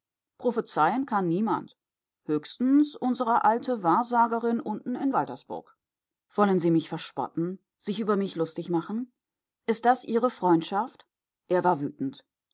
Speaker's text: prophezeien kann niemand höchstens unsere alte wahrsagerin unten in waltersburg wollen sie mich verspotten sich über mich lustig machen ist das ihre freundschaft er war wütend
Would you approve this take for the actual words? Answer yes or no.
yes